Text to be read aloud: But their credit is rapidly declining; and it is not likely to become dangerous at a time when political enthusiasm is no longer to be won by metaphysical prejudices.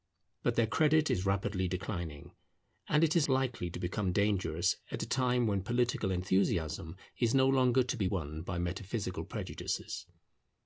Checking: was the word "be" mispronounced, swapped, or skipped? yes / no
no